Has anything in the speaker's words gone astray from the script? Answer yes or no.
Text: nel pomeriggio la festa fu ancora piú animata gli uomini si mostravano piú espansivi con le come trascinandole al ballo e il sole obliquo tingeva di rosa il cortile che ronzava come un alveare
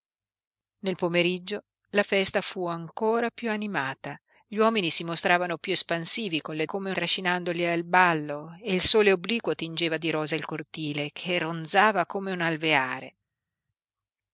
no